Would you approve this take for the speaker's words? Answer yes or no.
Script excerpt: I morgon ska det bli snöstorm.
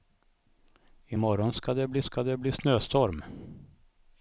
no